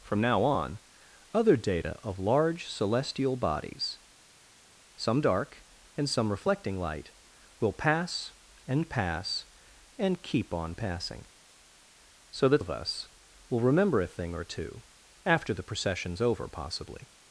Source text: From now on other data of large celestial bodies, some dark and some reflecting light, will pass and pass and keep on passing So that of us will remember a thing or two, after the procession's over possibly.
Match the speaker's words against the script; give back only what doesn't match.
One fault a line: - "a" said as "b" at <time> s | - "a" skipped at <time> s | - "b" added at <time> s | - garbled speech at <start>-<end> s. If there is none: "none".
none